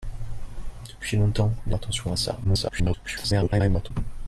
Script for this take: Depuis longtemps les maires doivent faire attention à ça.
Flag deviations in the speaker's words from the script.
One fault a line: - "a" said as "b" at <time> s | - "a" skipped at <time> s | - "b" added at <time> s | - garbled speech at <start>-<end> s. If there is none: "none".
- "maires doivent faire" skipped at 1.8 s
- garbled speech at 2.4-3.9 s